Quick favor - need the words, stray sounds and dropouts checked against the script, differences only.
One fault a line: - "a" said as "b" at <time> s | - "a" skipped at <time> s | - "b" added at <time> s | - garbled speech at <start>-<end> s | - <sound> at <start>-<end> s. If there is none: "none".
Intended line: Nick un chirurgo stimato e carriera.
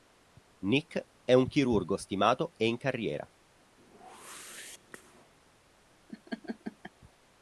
- "è" added at 1.2 s
- "in" added at 2.6 s
- whoosh at 3.8-5.3 s
- laugh at 6.1-6.9 s